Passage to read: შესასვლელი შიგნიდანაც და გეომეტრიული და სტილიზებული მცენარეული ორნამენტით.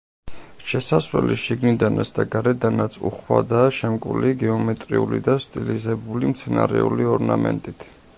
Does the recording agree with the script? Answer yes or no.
no